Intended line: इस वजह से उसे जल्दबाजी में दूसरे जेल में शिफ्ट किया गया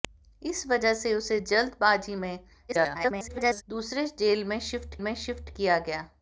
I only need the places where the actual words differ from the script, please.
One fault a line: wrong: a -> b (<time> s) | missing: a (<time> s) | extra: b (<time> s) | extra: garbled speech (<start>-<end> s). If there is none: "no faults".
extra: garbled speech (2.7-3.6 s)
extra: में शिफ्ट (5.0 s)